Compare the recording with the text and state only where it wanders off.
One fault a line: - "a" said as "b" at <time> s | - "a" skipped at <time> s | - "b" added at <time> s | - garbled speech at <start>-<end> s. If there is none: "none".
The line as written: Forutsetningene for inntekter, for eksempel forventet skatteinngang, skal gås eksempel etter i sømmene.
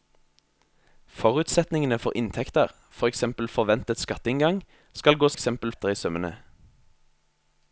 none